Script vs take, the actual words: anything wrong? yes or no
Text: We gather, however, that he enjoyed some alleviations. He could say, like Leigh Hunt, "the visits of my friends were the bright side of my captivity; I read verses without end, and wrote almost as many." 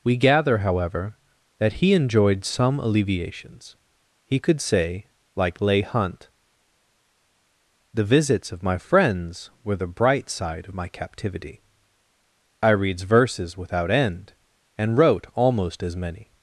yes